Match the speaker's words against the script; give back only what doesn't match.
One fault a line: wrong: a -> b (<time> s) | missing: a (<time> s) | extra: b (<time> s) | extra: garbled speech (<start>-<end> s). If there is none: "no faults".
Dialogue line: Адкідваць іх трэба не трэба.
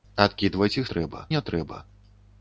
no faults